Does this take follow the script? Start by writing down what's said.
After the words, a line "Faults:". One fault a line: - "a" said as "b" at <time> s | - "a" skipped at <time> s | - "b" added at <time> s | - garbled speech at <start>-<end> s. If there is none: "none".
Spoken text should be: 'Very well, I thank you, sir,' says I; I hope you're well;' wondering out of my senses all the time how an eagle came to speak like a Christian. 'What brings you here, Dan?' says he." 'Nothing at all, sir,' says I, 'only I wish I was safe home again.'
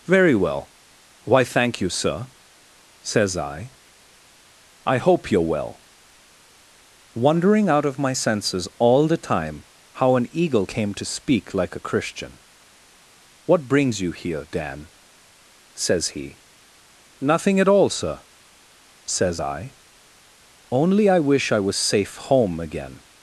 'Very well, why thank you, sir,' says I; I hope you're well;' wondering out of my senses all the time how an eagle came to speak like a Christian. 'What brings you here, Dan?' says he." 'Nothing at all, sir,' says I, 'only I wish I was safe home again.'
Faults:
- "I" said as "why" at 1.2 s